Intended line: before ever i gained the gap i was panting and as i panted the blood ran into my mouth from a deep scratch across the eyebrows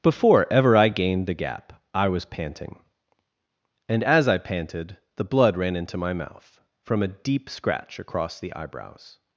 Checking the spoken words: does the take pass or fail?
pass